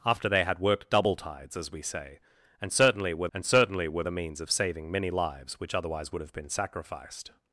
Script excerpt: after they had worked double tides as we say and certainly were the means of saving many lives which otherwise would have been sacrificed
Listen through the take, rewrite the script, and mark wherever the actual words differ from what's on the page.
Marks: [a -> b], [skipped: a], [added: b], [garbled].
after they had worked double tides as we say and certainly were [added: and certainly were] the means of saving many lives which otherwise would have been sacrificed